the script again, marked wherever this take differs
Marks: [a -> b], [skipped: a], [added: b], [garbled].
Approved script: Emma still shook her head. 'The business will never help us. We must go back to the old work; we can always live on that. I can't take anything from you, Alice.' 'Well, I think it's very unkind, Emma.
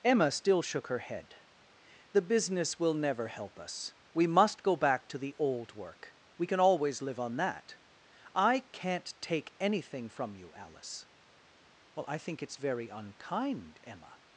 Emma still shook her head. 'The business will never help us. We must go back to the old work; we can always live on that. I can't take anything from you, Alice.' 'Well, I think it's very unkind, Emma.